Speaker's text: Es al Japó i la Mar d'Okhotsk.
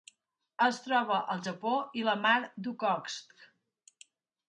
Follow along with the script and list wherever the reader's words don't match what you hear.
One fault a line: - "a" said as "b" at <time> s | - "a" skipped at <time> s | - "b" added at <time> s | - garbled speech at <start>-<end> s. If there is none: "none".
- "troba" added at 0.8 s